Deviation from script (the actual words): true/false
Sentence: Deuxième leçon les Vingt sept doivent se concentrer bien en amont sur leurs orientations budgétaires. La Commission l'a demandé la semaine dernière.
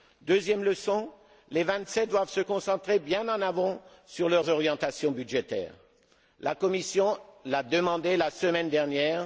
false